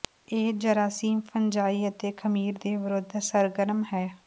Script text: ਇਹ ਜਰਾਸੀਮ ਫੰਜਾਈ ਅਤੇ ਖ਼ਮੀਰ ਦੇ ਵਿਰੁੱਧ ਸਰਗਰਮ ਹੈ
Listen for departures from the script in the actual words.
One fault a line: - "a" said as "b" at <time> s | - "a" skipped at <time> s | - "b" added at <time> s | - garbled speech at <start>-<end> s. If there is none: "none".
none